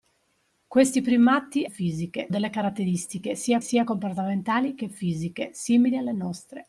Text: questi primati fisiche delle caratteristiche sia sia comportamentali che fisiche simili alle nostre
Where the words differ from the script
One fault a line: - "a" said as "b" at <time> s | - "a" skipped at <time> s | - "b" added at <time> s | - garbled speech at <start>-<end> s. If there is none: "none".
none